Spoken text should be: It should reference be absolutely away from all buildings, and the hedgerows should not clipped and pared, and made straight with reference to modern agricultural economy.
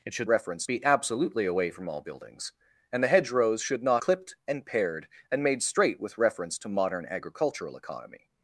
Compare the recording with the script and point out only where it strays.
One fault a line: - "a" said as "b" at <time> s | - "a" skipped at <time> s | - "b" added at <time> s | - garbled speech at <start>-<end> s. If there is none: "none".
none